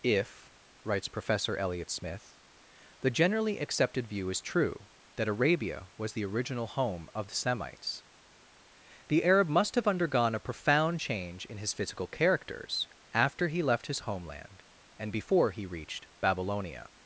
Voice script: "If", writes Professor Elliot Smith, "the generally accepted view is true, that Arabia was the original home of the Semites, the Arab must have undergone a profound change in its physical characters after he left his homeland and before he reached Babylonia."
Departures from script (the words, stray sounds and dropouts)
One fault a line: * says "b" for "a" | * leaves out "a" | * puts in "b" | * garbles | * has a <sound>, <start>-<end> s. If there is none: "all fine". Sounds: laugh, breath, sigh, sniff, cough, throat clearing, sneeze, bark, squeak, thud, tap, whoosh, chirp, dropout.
* says "his" for "its"